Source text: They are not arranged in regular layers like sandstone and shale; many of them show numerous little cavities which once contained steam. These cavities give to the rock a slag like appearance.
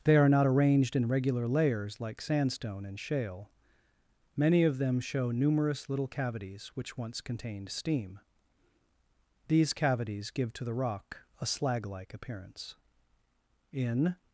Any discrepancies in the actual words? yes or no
yes